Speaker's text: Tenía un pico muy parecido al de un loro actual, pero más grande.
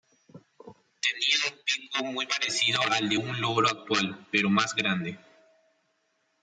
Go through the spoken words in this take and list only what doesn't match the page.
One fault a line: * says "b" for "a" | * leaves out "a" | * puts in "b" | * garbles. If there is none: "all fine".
all fine